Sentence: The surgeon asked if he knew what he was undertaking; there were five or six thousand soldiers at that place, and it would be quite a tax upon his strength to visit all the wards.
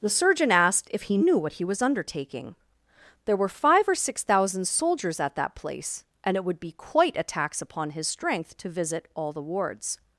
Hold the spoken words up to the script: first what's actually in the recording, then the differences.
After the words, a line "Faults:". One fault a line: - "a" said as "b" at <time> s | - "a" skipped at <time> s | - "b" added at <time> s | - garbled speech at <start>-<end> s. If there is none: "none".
The surgeon asked if he knew what he was undertaking; there were five or six thousand soldiers at that place, and it would be quite a tax upon his strength to visit all the wards.
Faults:
none